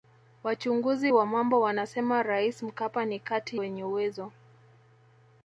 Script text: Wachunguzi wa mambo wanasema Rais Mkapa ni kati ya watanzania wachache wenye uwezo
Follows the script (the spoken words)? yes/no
no